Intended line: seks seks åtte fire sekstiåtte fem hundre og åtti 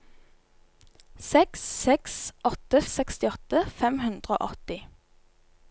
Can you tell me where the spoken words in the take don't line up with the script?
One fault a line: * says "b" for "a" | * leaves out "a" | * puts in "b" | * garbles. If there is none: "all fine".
* leaves out "fire"